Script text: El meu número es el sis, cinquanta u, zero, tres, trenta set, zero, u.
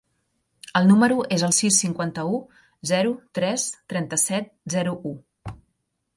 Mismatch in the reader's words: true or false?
false